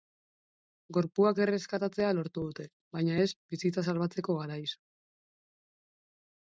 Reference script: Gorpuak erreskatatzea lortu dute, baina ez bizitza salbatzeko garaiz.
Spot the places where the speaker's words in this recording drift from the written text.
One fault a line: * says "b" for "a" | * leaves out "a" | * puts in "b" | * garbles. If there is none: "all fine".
all fine